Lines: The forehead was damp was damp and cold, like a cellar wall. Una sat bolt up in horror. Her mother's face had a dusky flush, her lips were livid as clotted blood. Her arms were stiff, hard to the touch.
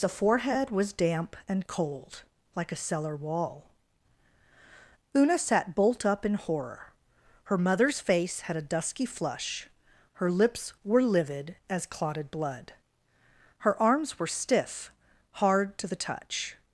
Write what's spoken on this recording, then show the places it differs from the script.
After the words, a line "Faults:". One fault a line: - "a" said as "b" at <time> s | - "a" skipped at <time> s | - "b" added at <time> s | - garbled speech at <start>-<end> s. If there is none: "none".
The forehead was damp and cold, like a cellar wall. Una sat bolt up in horror. Her mother's face had a dusky flush, her lips were livid as clotted blood. Her arms were stiff, hard to the touch.
Faults:
- "was damp" skipped at 1.4 s